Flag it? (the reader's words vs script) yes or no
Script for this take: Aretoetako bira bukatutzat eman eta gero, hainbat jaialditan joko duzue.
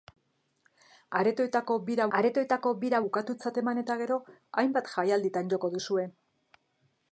yes